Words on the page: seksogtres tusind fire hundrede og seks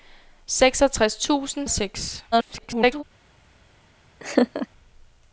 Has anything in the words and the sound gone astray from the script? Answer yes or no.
yes